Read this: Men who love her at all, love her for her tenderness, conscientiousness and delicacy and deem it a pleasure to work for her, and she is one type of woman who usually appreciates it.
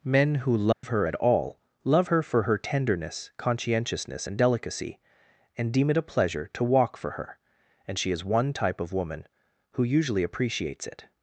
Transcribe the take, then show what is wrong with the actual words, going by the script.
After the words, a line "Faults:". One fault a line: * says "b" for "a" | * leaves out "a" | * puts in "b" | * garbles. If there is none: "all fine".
Men who love her at all, love her for her tenderness, conscientiousness and delicacy and deem it a pleasure to walk for her, and she is one type of woman who usually appreciates it.
Faults:
* says "walk" for "work"